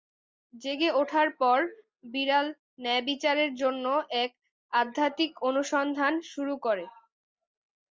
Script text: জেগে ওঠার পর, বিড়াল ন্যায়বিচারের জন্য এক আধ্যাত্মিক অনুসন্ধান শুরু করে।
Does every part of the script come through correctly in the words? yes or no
yes